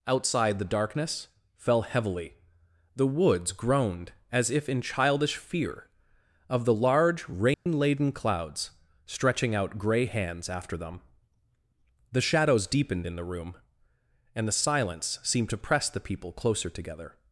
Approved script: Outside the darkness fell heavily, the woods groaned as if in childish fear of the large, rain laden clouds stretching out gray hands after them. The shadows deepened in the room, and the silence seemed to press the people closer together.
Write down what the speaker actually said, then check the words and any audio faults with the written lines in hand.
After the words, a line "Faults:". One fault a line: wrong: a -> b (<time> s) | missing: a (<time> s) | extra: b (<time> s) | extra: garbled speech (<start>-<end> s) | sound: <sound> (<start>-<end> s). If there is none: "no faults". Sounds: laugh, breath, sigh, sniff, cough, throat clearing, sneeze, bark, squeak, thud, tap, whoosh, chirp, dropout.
Outside the darkness fell heavily, the woods groaned as if in childish fear of the large, rain laden clouds stretching out gray hands after them. The shadows deepened in the room, and the silence seemed to press the people closer together.
Faults:
sound: dropout (7.5-7.7 s)